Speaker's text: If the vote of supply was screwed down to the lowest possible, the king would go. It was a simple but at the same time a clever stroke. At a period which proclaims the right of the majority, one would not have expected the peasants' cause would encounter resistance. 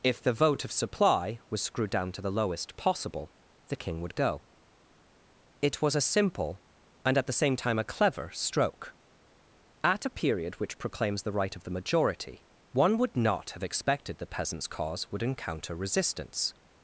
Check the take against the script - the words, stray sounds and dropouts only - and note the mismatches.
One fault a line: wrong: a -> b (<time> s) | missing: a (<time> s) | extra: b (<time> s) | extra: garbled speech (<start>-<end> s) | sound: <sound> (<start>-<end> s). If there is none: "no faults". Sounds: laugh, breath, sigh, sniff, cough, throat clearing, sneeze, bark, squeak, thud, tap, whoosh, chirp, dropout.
wrong: but -> and (7.0 s)